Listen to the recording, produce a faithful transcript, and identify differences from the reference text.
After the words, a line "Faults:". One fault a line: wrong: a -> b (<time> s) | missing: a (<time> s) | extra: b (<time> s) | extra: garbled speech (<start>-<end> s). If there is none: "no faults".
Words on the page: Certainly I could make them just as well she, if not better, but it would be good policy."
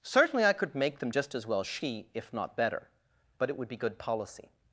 Certainly I could make them just as well she, if not better, but it would be good policy."
Faults:
no faults